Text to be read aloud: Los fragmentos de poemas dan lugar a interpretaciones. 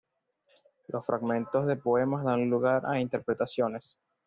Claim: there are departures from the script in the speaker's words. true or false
false